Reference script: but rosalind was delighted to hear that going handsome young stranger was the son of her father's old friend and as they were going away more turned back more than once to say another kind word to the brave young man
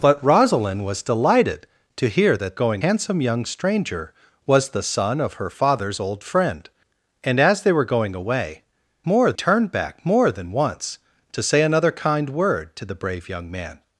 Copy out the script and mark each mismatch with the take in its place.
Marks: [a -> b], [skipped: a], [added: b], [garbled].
but rosalind was delighted to hear that going handsome young stranger was the son of her father's old friend and as they were going away more turned back more than once to say another kind word to the brave young man